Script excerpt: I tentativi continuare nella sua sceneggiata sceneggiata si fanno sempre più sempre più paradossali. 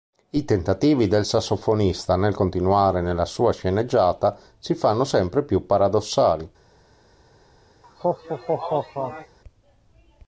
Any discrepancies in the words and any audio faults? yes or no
yes